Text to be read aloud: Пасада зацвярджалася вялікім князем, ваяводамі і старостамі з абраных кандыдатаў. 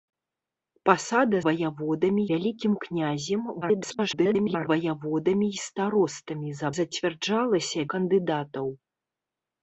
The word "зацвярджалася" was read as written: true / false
false